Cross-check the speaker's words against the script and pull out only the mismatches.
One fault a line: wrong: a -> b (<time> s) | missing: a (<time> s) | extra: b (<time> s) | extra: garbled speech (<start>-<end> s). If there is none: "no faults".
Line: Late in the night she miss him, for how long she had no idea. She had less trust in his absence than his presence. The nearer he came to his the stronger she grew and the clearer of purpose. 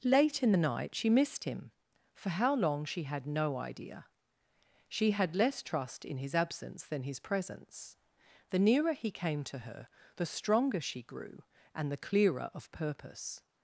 wrong: miss -> missed (1.1 s)
wrong: his -> her (9.6 s)